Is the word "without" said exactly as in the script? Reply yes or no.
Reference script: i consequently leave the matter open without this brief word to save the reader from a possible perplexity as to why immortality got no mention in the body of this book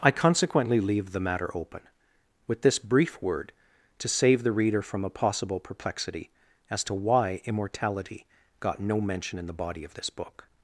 no